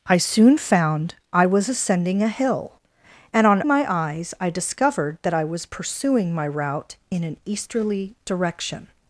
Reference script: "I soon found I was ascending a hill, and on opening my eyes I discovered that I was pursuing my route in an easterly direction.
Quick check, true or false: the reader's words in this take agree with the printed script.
false